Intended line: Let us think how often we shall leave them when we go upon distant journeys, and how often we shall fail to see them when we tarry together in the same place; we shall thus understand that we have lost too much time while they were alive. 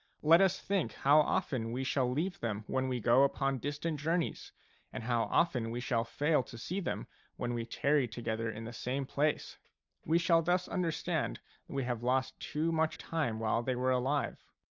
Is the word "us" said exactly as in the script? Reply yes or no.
yes